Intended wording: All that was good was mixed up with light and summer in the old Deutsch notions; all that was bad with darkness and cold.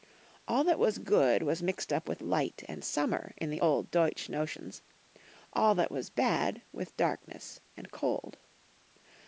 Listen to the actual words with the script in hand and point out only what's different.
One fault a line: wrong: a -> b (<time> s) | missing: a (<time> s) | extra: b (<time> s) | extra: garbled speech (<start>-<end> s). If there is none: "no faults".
no faults